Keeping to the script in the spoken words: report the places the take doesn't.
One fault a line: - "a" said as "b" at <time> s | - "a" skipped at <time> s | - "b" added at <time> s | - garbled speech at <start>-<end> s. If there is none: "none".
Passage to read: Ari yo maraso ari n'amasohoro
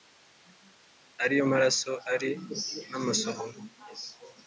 none